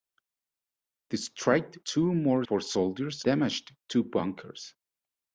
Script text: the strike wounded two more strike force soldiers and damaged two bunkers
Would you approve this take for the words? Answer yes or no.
no